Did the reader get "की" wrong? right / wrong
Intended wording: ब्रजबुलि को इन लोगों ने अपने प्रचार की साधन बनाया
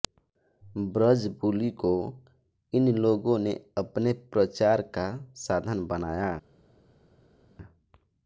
wrong